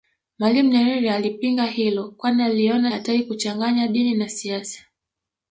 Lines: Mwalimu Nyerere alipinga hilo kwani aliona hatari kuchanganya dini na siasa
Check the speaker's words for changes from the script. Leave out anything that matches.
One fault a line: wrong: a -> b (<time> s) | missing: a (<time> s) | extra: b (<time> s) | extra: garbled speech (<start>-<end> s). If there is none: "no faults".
no faults